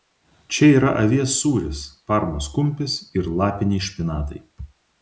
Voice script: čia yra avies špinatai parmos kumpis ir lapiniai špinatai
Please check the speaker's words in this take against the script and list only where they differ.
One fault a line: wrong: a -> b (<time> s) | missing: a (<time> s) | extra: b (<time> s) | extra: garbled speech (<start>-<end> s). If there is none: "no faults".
wrong: špinatai -> sūris (1.4 s)